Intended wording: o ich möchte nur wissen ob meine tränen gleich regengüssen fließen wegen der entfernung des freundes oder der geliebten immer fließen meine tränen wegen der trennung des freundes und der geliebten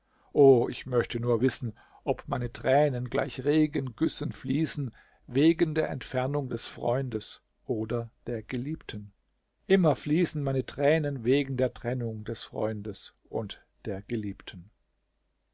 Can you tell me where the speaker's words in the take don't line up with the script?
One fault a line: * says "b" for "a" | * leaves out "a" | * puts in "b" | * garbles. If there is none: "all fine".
all fine